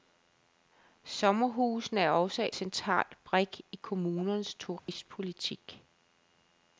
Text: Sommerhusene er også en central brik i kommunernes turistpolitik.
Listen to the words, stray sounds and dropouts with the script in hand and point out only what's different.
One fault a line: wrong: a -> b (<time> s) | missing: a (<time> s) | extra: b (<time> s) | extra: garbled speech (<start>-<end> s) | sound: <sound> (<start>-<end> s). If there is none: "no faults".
missing: en (2.5 s)
sound: dropout (4.8-4.9 s)